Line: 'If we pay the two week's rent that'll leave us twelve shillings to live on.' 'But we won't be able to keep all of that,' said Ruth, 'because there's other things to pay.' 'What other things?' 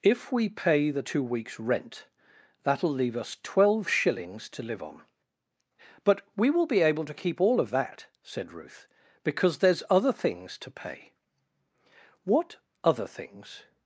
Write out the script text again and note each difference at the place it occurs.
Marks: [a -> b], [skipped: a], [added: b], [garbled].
'If we pay the two week's rent that'll leave us twelve shillings to live on.' 'But we [won't -> will] be able to keep all of that,' said Ruth, 'because there's other things to pay.' 'What other things?'